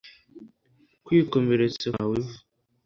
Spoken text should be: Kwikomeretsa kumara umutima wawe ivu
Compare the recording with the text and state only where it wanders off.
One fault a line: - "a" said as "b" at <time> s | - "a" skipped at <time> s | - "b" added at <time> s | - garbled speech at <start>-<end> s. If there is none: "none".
- "kumara umutima" skipped at 1.9 s